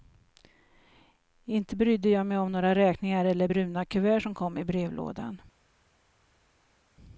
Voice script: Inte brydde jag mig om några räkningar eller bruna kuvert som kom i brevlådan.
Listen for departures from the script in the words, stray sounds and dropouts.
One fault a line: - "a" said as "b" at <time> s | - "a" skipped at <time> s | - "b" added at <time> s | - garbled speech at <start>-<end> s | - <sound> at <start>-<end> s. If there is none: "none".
none